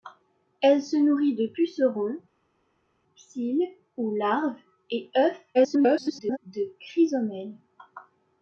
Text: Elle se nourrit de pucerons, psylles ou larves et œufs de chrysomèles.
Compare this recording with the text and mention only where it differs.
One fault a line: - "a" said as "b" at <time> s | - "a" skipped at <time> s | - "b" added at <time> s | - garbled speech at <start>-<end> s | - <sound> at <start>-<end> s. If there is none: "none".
- garbled speech at 5.5-6.4 s